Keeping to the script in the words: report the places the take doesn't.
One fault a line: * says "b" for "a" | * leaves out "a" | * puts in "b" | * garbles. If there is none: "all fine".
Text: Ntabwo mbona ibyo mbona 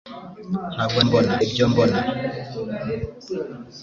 all fine